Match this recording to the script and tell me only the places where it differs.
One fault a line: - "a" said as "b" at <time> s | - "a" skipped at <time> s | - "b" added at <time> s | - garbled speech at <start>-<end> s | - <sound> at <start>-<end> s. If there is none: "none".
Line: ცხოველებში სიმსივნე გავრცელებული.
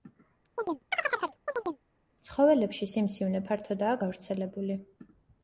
- chirp at 0.6-1.8 s
- "ფართოდაა" added at 3.5 s